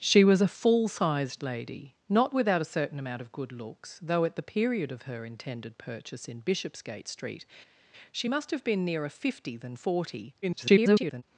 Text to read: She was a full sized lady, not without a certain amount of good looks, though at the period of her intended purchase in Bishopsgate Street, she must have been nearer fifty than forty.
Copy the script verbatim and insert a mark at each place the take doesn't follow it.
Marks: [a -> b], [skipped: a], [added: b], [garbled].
She was a full sized lady, not without a certain amount of good looks, though at the period of her intended purchase in Bishopsgate Street, she must have been nearer fifty than forty. [garbled]